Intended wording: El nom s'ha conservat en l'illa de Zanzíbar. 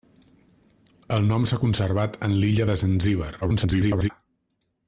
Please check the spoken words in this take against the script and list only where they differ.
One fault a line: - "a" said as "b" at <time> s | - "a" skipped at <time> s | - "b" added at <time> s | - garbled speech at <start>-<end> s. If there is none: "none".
- garbled speech at 3.4-4.1 s